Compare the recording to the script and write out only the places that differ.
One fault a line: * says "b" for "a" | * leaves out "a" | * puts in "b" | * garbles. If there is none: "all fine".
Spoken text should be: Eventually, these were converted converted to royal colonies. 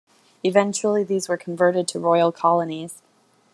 * leaves out "converted"